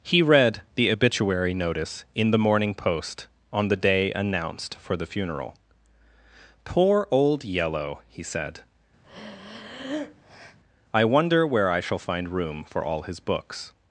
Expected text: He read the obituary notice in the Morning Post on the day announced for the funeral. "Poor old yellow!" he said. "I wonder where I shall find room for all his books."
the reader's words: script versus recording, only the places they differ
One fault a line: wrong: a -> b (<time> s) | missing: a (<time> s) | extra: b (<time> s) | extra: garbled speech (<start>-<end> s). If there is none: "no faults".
no faults